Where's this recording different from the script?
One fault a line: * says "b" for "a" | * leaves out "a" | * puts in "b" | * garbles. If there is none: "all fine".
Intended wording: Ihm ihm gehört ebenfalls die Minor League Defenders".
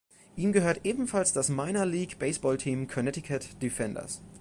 * leaves out "ihm"
* says "das" for "die"
* puts in "Baseballteam Connecticut"